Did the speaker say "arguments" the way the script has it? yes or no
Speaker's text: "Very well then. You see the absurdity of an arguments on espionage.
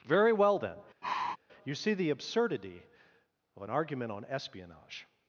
no